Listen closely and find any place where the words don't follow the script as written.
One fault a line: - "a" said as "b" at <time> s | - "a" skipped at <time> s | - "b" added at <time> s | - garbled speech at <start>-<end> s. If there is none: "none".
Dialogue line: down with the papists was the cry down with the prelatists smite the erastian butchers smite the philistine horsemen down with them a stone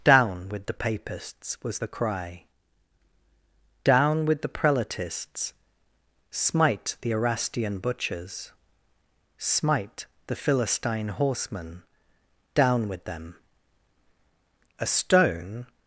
none